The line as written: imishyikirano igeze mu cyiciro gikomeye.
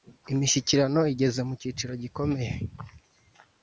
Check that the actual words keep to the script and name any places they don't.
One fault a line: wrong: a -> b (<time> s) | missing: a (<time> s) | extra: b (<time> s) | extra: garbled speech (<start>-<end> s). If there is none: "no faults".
no faults